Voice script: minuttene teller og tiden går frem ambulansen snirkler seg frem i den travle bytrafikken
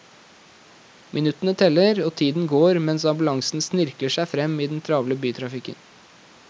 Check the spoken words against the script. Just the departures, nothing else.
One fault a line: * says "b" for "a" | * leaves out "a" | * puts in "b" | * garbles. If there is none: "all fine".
* says "mens" for "frem"